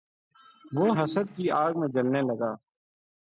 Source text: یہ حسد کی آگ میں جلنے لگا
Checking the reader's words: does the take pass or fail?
fail